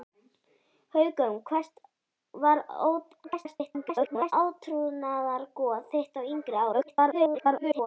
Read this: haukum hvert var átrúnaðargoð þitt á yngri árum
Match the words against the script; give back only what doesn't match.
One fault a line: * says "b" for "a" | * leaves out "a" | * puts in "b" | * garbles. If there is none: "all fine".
* garbles
* garbles